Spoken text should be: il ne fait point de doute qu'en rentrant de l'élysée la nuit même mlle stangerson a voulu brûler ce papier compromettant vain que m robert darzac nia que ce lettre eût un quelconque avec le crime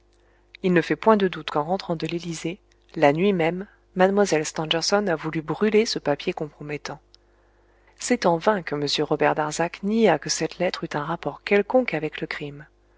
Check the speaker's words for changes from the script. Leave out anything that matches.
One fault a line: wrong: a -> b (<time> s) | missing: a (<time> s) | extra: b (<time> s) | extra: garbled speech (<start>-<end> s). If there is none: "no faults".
extra: c'est en (8.0 s)
wrong: ce -> cette (10.3 s)
extra: rapport (11.0 s)